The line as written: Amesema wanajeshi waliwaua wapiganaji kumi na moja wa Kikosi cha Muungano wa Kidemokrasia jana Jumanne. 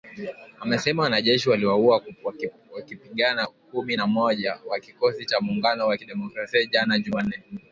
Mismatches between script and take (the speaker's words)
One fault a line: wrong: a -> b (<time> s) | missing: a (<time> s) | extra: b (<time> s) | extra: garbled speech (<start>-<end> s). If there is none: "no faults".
no faults